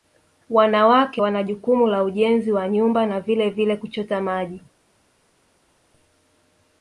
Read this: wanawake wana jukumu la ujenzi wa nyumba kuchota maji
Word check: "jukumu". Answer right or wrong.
right